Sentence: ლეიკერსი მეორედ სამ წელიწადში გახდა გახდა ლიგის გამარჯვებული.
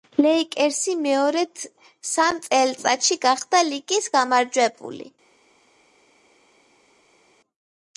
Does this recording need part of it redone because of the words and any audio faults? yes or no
yes